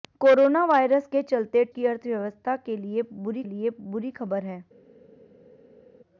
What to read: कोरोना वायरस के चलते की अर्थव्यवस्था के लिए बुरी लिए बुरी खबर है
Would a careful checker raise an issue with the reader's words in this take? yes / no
no